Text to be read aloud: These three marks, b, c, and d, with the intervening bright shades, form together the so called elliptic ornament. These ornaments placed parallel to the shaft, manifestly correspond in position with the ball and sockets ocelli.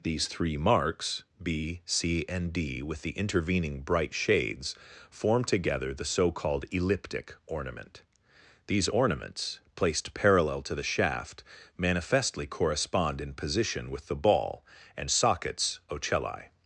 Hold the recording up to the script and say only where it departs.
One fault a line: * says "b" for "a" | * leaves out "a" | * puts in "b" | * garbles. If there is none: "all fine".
all fine